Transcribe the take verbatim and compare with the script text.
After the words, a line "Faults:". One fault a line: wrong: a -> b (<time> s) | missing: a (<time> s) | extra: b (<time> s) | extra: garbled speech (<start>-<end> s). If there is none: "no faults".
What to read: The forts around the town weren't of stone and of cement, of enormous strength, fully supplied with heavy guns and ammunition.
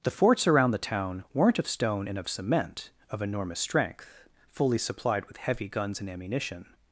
The forts around the town weren't of stone and of cement, of enormous strength, fully supplied with heavy guns and ammunition.
Faults:
no faults